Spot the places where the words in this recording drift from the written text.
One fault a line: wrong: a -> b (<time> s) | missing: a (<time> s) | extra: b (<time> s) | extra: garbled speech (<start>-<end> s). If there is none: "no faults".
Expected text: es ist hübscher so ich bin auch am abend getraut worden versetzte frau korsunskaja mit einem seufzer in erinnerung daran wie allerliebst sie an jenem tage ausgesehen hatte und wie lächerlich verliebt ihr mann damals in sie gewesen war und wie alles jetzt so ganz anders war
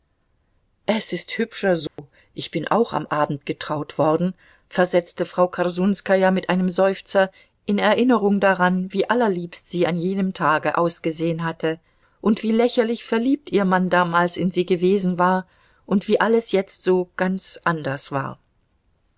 no faults